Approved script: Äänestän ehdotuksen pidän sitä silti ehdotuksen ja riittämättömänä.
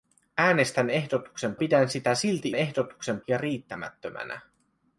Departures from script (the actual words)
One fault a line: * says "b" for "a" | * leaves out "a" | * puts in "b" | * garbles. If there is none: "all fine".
all fine